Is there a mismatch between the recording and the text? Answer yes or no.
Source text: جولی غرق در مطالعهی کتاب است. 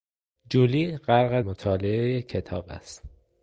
yes